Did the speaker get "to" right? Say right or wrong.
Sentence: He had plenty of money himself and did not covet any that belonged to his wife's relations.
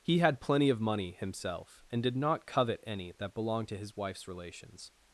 right